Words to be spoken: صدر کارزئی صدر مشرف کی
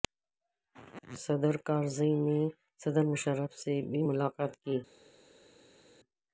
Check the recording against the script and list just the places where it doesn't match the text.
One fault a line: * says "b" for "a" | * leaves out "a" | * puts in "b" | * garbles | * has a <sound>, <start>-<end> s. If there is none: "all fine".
* puts in "نے"
* puts in "سے بھی ملاقات"